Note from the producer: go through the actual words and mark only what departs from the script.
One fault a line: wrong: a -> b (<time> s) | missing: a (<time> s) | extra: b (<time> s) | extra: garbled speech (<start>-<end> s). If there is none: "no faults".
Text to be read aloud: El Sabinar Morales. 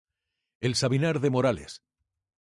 extra: de (1.2 s)